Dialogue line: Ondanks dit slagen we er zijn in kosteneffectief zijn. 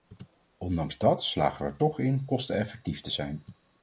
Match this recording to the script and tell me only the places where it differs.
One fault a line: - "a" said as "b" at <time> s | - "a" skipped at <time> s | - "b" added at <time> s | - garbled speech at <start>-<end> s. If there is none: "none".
- "dit" said as "dat" at 1.0 s
- "zijn" said as "toch" at 1.7 s
- "te" added at 3.0 s